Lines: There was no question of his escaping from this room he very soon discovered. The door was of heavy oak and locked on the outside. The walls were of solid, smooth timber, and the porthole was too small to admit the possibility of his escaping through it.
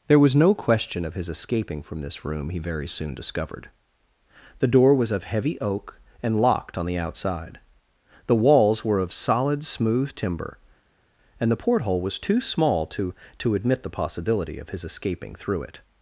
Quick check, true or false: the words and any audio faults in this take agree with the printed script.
false